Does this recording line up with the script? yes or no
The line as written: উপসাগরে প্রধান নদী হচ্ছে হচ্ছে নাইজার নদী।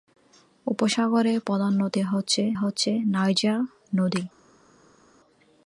yes